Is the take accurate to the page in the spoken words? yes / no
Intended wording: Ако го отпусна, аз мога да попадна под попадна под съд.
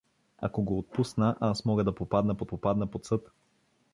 yes